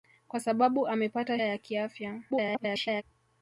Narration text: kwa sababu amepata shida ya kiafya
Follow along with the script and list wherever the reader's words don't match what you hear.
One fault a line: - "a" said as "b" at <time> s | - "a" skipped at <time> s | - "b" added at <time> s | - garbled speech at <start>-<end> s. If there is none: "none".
- "shida" skipped at 1.4 s
- garbled speech at 2.3-3.0 s